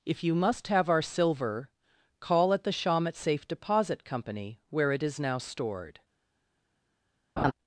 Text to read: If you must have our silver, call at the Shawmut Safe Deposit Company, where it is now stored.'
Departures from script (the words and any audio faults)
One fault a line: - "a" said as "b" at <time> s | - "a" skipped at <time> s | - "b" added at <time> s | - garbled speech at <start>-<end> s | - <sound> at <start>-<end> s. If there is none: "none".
- laugh at 7.4-7.5 s